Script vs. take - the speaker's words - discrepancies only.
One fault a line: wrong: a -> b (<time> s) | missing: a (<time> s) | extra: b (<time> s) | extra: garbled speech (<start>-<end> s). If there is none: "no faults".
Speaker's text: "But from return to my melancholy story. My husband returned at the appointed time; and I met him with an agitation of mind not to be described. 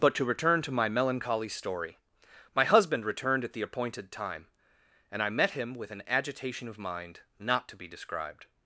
wrong: from -> to (0.1 s)